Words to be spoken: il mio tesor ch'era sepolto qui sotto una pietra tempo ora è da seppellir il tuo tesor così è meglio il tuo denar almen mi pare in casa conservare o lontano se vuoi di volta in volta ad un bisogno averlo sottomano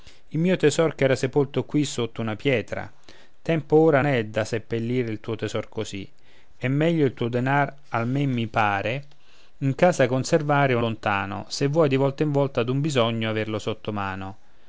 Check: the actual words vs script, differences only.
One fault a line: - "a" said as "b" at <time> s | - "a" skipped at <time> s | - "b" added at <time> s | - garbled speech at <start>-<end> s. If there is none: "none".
none